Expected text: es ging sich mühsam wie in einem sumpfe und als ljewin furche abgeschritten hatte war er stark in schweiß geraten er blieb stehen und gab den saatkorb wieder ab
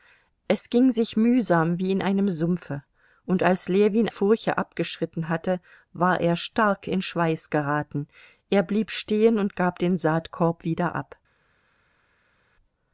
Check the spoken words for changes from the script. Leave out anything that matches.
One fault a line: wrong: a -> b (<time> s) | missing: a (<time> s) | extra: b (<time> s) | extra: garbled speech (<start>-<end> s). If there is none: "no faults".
no faults